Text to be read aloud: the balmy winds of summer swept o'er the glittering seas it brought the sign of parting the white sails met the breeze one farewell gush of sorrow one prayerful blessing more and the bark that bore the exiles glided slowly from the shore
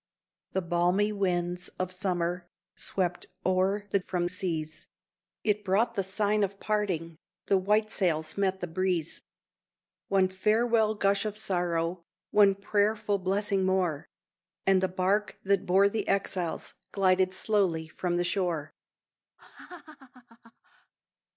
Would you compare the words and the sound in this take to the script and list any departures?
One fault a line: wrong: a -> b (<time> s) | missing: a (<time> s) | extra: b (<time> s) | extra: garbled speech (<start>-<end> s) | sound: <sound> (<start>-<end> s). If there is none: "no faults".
wrong: glittering -> from (4.0 s)
sound: laugh (19.4-20.9 s)